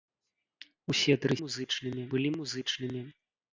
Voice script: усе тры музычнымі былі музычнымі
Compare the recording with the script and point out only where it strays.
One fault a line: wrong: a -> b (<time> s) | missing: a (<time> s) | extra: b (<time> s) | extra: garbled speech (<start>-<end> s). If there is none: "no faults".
no faults